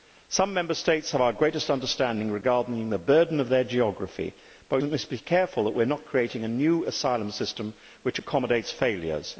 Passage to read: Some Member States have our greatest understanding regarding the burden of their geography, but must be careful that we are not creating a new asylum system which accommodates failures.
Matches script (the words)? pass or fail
pass